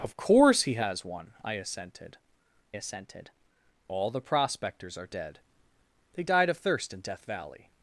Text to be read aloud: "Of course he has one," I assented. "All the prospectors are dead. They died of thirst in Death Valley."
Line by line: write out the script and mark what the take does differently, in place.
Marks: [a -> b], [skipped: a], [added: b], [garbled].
"Of course he has one," I assented. [added: assented] "All the prospectors are dead. They died of thirst in Death Valley."